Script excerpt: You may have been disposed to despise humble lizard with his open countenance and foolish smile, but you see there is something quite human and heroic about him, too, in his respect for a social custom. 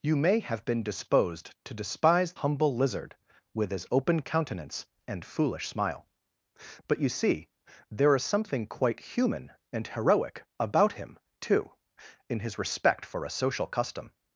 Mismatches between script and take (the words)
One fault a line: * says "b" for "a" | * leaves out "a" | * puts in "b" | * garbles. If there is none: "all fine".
all fine